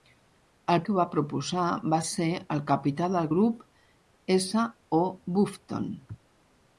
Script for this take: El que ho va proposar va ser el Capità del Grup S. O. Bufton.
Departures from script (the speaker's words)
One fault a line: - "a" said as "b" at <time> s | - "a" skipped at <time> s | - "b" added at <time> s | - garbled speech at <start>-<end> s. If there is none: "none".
none